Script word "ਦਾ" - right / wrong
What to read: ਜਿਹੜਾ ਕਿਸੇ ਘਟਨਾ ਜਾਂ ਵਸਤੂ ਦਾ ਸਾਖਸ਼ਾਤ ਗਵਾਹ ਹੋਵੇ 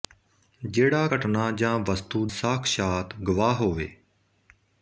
wrong